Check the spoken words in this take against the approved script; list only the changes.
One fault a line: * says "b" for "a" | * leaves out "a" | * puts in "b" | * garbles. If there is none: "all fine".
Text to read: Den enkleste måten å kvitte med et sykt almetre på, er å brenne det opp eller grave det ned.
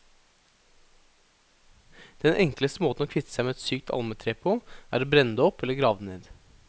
* puts in "seg"